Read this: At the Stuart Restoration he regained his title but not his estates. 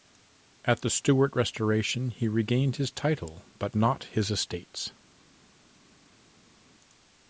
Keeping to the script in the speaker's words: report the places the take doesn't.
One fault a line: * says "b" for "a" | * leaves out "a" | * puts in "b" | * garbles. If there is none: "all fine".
all fine